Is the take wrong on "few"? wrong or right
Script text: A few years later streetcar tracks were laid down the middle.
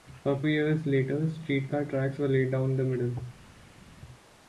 wrong